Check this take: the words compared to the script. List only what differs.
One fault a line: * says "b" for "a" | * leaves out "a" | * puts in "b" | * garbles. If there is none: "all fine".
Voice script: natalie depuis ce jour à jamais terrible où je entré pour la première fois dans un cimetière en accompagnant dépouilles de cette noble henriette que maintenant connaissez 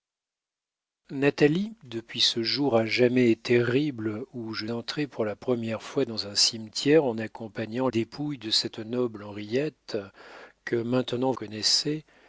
all fine